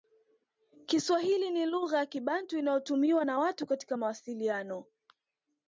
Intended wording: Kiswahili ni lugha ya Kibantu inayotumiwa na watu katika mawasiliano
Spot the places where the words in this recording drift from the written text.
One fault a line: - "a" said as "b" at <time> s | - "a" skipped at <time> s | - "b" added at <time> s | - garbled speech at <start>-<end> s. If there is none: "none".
none